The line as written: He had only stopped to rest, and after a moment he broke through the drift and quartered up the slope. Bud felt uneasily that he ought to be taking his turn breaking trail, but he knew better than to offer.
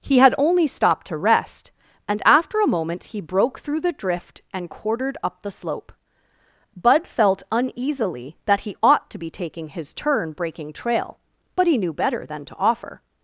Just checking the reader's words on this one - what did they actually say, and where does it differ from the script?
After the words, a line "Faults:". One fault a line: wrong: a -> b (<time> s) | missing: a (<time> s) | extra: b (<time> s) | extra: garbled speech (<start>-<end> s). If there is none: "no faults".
He had only stopped to rest, and after a moment he broke through the drift and quartered up the slope. Bud felt uneasily that he ought to be taking his turn breaking trail, but he knew better than to offer.
Faults:
no faults